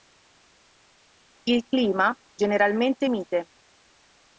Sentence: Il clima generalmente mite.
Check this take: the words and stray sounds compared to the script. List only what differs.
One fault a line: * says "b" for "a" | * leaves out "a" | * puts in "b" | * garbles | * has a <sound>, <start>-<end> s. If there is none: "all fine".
all fine